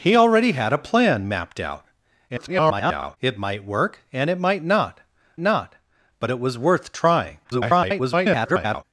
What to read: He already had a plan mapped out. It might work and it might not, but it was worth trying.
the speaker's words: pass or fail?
fail